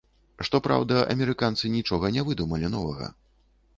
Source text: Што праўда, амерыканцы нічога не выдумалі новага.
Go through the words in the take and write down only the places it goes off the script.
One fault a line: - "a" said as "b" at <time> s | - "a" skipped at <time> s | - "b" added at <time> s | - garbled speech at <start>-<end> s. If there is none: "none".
none